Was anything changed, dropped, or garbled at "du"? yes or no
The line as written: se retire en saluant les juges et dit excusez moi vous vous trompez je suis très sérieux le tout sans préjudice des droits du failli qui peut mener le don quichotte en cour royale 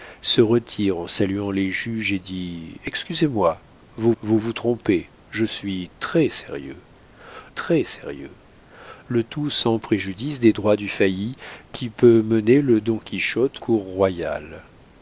no